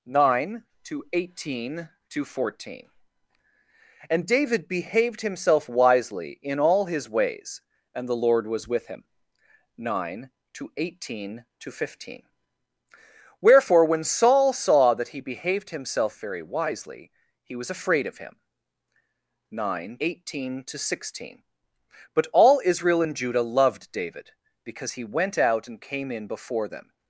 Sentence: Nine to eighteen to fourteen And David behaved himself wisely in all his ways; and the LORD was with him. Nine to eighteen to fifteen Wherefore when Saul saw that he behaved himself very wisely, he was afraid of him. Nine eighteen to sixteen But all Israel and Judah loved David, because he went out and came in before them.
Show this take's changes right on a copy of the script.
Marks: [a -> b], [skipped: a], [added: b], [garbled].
Nine to eighteen to fourteen And David behaved himself wisely in all his ways; and the LORD was with him. Nine to eighteen to fifteen Wherefore when Saul saw that he behaved himself very wisely, he was afraid of him. Nine eighteen to sixteen But all Israel and Judah loved David, because he went out and came in before them.